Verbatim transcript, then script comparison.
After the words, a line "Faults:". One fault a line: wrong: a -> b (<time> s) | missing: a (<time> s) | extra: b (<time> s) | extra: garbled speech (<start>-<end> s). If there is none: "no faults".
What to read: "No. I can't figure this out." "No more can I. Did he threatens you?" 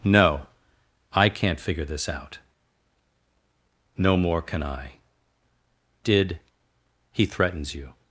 "No. I can't figure this out." "No more can I. Did he threatens you?"
Faults:
no faults